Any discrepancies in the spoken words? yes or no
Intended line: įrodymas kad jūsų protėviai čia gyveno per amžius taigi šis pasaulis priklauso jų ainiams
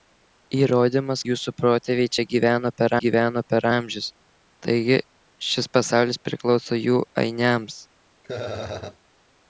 yes